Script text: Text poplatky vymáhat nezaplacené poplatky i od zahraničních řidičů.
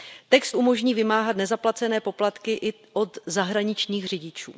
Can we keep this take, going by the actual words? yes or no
no